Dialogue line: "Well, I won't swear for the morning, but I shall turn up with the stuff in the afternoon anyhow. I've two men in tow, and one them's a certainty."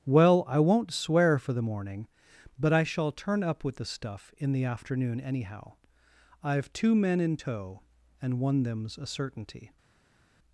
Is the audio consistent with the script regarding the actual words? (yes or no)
yes